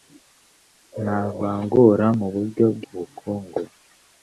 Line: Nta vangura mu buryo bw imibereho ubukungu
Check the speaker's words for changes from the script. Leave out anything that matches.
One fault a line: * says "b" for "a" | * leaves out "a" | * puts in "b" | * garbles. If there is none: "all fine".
* leaves out "imibereho"